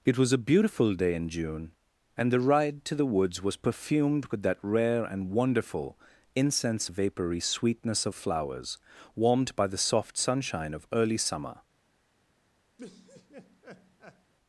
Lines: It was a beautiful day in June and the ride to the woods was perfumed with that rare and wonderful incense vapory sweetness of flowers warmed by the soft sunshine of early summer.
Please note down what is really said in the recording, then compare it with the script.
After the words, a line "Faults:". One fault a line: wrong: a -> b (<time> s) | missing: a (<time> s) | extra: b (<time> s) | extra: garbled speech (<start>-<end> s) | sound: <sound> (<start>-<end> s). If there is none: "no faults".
It was a beautiful day in June and the ride to the woods was perfumed with that rare and wonderful incense vapory sweetness of flowers warmed by the soft sunshine of early summer.
Faults:
sound: laugh (12.8-14.3 s)